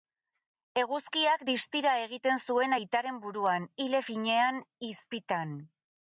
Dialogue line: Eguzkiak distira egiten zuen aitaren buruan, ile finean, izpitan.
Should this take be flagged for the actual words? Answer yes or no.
no